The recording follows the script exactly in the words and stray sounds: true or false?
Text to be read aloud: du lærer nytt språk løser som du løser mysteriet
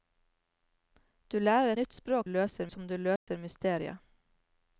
false